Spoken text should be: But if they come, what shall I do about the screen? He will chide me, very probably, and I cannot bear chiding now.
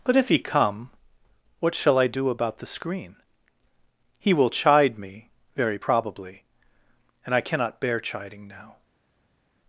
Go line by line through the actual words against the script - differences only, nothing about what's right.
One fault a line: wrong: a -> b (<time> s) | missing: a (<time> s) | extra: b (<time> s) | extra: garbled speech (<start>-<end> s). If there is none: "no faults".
wrong: they -> he (0.3 s)